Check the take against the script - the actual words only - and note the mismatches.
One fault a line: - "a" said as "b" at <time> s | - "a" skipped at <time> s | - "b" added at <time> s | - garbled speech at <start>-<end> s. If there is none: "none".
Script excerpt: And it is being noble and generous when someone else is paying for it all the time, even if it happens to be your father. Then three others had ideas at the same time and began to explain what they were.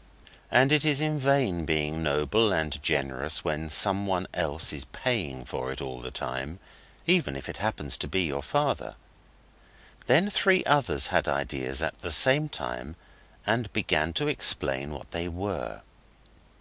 - "in vain" added at 1.0 s